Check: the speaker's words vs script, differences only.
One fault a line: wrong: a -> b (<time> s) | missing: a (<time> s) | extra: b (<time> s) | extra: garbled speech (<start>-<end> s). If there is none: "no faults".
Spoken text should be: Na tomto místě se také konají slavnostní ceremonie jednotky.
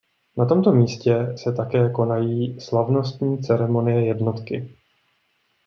no faults